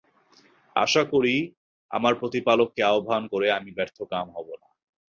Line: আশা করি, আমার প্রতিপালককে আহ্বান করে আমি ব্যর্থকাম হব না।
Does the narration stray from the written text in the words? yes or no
no